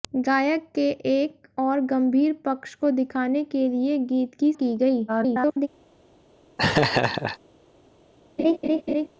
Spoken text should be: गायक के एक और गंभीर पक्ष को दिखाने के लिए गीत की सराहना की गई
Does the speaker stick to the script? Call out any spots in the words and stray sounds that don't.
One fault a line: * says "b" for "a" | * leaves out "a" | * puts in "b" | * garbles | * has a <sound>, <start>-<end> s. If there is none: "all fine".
* leaves out "सराहना"
* garbles
* has a laugh, 6.6-7.4 s
* has a laugh, 8.4-9.1 s